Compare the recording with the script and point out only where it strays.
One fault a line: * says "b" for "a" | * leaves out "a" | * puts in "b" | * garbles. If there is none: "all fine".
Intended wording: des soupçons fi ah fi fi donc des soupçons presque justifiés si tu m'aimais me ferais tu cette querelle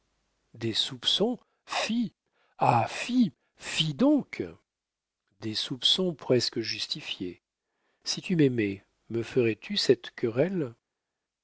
all fine